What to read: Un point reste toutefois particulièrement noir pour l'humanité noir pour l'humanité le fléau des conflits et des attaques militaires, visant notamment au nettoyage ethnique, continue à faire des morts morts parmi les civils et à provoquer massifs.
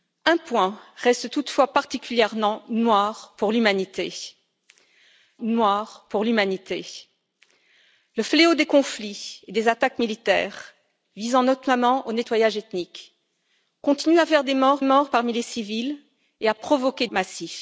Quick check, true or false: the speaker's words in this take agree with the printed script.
true